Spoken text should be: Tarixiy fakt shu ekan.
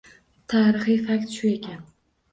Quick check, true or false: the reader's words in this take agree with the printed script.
true